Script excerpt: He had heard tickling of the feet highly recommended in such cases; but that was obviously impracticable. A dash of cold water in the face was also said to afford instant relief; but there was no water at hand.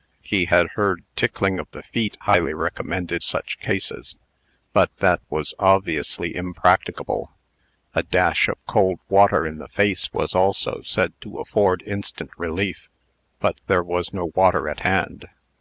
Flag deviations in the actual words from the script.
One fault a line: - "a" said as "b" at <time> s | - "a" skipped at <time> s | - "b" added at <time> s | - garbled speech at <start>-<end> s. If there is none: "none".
- "in" skipped at 3.2 s